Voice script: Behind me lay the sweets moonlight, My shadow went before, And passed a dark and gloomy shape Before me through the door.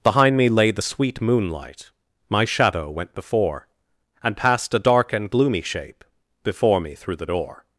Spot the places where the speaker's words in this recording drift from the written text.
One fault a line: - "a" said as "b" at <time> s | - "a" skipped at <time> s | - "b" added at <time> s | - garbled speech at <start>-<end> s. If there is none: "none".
- "sweets" said as "sweet" at 0.8 s